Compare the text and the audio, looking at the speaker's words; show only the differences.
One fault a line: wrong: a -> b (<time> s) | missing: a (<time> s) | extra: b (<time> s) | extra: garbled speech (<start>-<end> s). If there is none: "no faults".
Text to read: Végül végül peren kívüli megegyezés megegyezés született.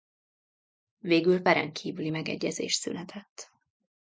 missing: végül (1.4 s)
missing: megegyezés (2.7 s)